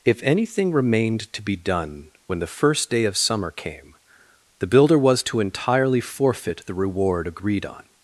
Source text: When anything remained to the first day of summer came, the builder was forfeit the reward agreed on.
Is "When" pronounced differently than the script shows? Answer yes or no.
yes